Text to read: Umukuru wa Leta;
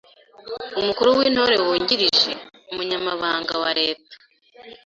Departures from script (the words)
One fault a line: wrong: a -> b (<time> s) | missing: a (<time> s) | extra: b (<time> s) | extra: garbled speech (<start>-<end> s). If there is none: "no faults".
extra: w'Intore wungirije Umunyamabanga (1.2 s)